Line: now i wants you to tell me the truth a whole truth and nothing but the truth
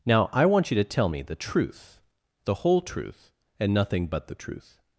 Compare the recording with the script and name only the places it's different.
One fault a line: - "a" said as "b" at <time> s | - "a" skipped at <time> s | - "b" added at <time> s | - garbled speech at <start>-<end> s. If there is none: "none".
- "wants" said as "want" at 0.5 s
- "a" said as "the" at 2.4 s